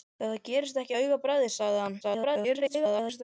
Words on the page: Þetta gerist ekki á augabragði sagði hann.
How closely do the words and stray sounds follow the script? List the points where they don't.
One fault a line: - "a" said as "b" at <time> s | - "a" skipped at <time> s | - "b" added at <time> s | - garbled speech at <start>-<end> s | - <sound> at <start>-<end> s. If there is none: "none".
- garbled speech at 2.0-3.2 s